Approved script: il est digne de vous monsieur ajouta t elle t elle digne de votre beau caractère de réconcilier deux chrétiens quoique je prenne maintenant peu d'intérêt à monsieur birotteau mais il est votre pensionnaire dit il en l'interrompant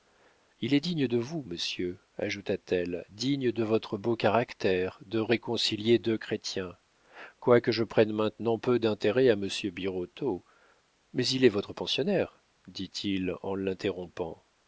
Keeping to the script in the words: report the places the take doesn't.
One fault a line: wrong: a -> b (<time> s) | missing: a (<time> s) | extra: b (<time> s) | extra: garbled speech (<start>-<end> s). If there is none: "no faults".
missing: t elle (3.0 s)